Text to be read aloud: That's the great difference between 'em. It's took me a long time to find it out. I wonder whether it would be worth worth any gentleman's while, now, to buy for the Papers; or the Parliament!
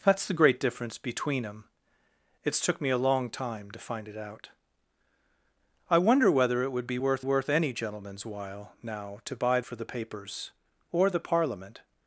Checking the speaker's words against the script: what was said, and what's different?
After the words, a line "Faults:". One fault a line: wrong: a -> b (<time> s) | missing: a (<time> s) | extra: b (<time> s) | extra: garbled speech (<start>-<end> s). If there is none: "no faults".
That's the great difference between 'em. It's took me a long time to find it out. I wonder whether it would be worth worth any gentleman's while, now, to buy for the Papers; or the Parliament!
Faults:
no faults